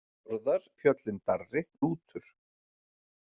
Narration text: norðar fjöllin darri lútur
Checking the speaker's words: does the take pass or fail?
pass